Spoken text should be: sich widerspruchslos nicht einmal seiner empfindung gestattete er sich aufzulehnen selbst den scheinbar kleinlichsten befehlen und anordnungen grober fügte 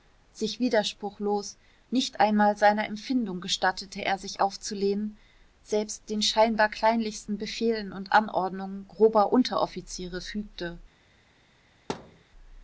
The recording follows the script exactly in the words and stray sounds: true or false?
false